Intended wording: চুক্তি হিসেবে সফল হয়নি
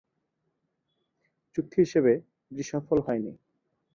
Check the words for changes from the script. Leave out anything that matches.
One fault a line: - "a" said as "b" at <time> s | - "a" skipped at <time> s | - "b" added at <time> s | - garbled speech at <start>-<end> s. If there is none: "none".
- "এটি" added at 2.5 s